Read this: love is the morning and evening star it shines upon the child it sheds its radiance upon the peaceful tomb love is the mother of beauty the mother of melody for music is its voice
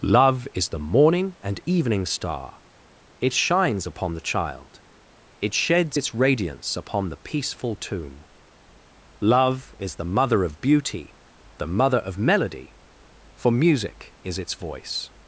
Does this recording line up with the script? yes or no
yes